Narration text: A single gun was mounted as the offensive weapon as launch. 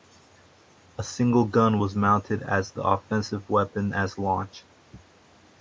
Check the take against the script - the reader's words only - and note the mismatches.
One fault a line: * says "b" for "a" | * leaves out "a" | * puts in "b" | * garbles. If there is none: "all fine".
all fine